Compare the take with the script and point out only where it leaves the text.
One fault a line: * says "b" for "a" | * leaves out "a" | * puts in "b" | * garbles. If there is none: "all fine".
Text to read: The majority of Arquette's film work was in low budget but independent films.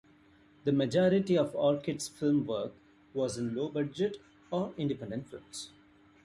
* says "or" for "but"